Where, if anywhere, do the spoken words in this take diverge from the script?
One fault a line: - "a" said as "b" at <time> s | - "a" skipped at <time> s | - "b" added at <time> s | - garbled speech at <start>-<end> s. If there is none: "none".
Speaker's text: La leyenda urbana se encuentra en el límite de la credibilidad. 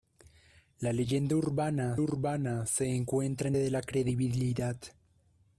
- "urbana" added at 2.0 s
- "el límite" skipped at 3.6 s